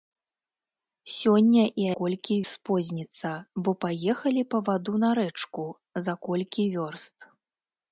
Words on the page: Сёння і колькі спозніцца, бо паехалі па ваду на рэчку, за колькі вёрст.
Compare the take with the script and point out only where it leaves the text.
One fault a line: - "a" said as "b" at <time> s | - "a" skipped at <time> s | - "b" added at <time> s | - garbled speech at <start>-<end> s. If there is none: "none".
none